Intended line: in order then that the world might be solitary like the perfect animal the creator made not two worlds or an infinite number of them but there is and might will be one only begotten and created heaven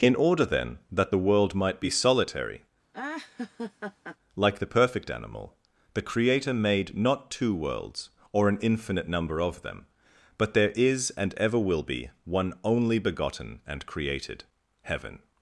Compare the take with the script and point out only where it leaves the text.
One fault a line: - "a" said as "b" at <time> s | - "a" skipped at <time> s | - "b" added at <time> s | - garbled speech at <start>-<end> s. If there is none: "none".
- "might" said as "ever" at 11.4 s